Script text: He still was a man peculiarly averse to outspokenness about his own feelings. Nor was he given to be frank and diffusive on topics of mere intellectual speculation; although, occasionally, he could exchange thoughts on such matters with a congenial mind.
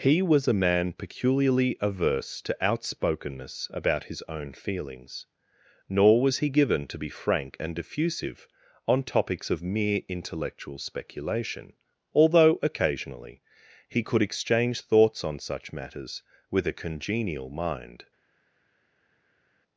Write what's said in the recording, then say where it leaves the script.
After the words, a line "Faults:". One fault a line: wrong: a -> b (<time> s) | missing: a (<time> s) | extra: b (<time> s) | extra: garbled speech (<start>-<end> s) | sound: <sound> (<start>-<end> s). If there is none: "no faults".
He was a man peculiarly averse to outspokenness about his own feelings. Nor was he given to be frank and diffusive on topics of mere intellectual speculation; although, occasionally, he could exchange thoughts on such matters with a congenial mind.
Faults:
missing: still (0.2 s)